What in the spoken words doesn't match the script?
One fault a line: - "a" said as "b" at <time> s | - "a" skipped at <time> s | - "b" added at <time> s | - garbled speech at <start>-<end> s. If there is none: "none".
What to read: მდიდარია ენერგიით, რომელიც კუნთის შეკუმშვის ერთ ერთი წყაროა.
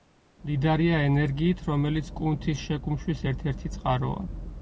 none